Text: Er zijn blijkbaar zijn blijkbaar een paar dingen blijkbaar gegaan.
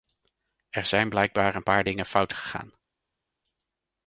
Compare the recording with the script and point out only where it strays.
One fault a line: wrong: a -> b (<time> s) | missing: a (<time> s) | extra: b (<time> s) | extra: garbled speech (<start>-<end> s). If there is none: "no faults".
missing: zijn blijkbaar (1.6 s)
wrong: blijkbaar -> fout (2.1 s)